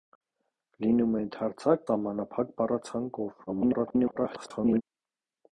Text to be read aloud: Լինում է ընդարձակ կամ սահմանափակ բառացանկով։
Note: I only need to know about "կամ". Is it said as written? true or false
false